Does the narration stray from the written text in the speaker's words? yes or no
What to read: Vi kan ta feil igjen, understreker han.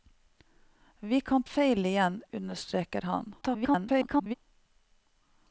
yes